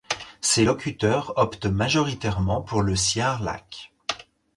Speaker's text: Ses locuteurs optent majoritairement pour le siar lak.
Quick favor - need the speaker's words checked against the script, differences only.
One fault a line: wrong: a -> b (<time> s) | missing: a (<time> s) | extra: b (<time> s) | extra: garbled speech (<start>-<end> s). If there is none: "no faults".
no faults